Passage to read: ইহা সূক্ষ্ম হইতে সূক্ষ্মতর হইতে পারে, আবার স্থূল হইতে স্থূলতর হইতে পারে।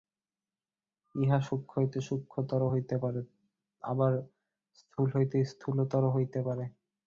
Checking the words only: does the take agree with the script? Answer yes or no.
yes